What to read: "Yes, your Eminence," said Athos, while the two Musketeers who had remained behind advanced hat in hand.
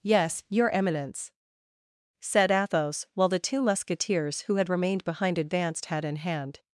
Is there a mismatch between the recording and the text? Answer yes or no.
no